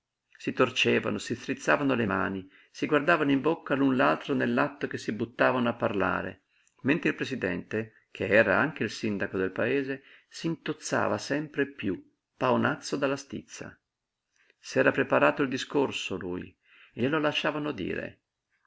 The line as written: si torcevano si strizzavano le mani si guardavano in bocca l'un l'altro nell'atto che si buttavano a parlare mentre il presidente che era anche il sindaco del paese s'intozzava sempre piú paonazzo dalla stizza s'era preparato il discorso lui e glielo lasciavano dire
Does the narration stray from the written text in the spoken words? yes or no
no